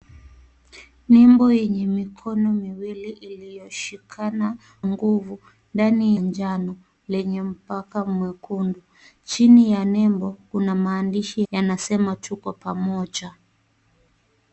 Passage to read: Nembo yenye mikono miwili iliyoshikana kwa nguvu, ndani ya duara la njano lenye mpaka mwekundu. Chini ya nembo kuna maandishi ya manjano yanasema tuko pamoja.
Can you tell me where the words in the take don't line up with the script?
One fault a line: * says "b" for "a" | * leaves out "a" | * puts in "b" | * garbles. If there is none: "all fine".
* leaves out "kwa"
* leaves out "ya duara la"
* leaves out "ya manjano"